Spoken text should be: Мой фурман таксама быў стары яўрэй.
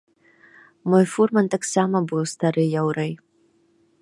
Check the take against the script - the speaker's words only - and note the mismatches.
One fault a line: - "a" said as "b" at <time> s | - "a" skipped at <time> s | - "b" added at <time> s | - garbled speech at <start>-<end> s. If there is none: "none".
none